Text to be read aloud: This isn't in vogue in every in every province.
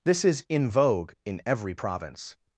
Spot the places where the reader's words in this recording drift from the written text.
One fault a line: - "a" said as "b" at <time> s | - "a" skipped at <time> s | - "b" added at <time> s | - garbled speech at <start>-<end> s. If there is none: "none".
- "isn't" said as "is" at 0.2 s
- "in every" skipped at 1.8 s